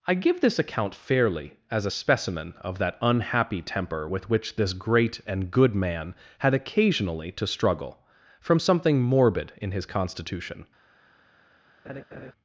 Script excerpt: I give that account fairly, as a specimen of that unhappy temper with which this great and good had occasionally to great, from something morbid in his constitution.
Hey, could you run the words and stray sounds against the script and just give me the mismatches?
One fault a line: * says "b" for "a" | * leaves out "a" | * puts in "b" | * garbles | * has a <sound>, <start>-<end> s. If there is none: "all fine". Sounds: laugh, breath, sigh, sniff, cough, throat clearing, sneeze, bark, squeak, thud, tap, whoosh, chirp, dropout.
* says "this" for "that"
* puts in "man"
* says "struggle" for "great"
* has a laugh, 11.8-12.3 s